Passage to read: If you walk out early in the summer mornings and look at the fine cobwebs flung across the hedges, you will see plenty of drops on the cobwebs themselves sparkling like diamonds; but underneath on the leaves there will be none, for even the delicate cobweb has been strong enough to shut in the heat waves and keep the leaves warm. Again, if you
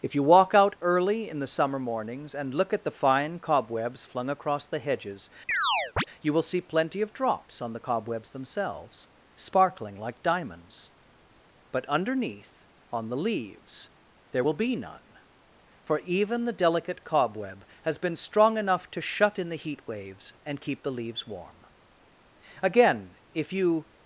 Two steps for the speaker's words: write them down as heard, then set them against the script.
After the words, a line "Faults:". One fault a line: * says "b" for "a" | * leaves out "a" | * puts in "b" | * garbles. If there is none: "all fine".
If you walk out early in the summer mornings and look at the fine cobwebs flung across the hedges, you will see plenty of drops on the cobwebs themselves sparkling like diamonds; but underneath on the leaves there will be none, for even the delicate cobweb has been strong enough to shut in the heat waves and keep the leaves warm. Again, if you
Faults:
all fine